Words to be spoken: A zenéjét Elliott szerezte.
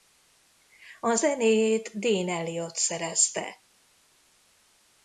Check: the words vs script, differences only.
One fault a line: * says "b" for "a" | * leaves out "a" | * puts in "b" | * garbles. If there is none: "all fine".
* puts in "Dean"